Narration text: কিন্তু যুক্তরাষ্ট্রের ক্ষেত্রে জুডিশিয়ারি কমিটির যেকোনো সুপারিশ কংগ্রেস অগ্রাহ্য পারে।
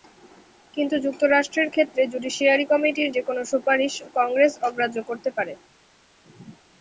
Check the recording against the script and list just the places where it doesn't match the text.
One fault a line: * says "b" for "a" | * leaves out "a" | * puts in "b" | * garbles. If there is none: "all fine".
* puts in "করতে"